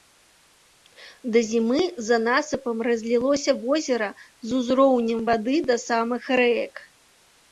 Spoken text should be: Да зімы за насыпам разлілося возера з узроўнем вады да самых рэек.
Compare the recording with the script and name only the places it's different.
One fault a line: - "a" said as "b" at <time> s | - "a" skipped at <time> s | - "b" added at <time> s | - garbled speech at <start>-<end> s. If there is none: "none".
none